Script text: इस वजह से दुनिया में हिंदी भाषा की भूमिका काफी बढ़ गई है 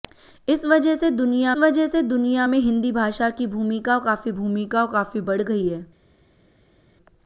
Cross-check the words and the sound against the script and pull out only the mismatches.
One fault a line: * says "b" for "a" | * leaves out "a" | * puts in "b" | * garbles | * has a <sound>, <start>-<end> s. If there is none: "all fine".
* puts in "वजह से दुनिया"
* puts in "भूमिका काफी"